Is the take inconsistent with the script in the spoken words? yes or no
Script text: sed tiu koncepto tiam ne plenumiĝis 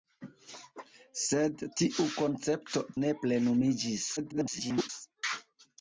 yes